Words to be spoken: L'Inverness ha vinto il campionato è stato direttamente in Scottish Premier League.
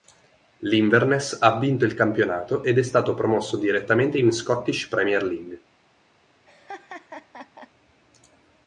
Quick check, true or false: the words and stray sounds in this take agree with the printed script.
false